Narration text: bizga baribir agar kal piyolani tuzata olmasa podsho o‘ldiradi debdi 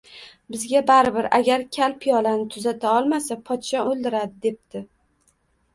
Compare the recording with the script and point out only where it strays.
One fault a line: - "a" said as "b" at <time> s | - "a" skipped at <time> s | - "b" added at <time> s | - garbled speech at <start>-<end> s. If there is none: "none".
none